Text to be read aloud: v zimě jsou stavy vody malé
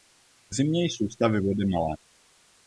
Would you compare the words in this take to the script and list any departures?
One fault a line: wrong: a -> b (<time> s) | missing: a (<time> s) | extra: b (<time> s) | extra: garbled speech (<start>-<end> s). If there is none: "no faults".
no faults